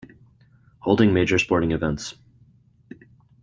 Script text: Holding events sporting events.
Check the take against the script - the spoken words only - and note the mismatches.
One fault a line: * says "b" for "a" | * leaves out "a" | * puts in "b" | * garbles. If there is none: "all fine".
* says "major" for "events"